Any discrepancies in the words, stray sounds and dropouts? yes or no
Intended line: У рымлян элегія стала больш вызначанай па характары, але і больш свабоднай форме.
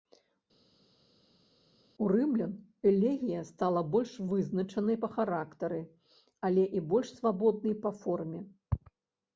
yes